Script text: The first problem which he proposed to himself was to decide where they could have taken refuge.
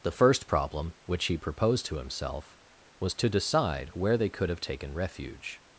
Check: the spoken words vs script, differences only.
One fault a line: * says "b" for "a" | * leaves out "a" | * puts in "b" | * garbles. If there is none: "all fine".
all fine